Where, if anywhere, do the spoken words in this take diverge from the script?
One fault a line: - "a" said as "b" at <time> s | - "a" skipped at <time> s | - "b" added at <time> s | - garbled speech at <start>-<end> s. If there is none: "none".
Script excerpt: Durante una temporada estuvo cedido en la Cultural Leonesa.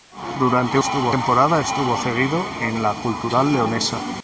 - "una" said as "estuvo" at 0.8 s